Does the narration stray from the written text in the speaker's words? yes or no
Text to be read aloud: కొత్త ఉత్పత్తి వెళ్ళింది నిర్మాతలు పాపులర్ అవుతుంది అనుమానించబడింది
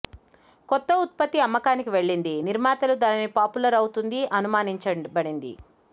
yes